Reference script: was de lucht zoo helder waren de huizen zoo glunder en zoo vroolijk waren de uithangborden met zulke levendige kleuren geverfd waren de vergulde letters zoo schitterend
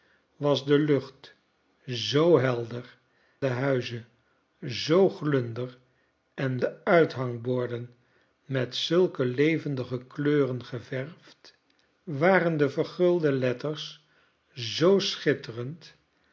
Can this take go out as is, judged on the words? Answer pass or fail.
fail